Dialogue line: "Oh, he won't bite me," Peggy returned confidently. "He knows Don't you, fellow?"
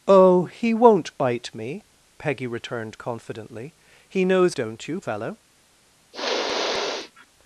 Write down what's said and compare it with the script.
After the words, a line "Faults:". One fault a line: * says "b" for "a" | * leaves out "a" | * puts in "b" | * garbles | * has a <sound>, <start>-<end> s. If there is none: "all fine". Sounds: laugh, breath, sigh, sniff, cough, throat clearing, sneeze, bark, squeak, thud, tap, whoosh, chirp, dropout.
"Oh, he won't bite me," Peggy returned confidently. "He knows Don't you, fellow?"
Faults:
* has a sniff, 6.1-7.3 s